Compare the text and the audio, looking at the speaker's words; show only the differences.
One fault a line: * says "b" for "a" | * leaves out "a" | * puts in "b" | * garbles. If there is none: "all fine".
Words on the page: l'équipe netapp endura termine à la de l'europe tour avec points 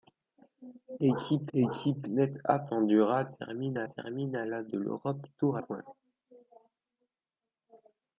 * puts in "l'équipe"
* puts in "termine à"
* leaves out "avec"